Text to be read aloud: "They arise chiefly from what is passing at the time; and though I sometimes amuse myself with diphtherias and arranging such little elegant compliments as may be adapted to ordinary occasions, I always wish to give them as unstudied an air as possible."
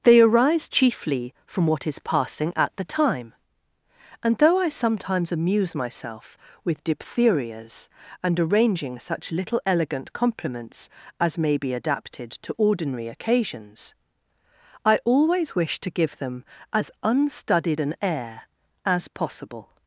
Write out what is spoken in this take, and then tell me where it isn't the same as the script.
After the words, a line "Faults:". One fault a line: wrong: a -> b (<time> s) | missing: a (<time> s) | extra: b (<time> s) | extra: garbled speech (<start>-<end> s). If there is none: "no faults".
"They arise chiefly from what is passing at the time; and though I sometimes amuse myself with diphtherias and arranging such little elegant compliments as may be adapted to ordinary occasions, I always wish to give them as unstudied an air as possible."
Faults:
no faults